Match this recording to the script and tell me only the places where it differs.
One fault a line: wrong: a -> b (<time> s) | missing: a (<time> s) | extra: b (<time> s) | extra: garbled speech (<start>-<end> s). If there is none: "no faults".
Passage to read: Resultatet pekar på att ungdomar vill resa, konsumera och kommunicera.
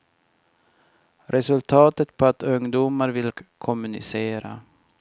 missing: pekar (2.1 s)
missing: resa konsumera (3.3 s)